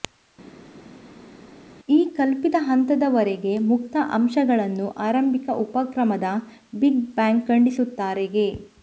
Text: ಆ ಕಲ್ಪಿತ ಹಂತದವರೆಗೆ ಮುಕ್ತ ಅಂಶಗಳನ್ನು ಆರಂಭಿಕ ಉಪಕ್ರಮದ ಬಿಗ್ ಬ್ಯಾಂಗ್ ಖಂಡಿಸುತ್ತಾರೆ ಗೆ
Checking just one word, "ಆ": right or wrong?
wrong